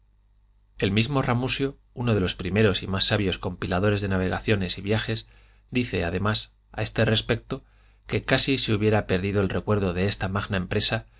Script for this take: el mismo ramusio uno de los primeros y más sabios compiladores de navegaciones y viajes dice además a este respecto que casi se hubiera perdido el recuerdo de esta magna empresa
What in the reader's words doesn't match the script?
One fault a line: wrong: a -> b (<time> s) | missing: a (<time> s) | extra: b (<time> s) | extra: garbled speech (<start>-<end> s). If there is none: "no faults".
no faults